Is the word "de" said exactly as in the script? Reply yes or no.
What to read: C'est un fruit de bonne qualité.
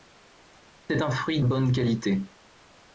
no